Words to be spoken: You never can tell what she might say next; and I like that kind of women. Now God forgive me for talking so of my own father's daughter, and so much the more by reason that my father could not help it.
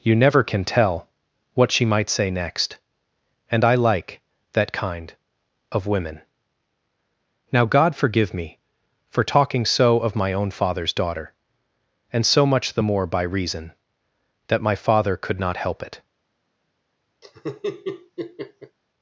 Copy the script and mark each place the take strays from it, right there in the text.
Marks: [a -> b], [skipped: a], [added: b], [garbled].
You never can tell what she might say next; and I like that kind of women. Now God forgive me for talking so of my own father's daughter, and so much the more by reason that my father could not help it.